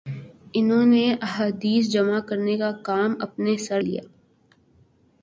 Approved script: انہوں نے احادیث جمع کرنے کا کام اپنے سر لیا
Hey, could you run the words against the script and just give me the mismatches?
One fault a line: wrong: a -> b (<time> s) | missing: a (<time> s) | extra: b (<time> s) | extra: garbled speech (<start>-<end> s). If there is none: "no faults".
no faults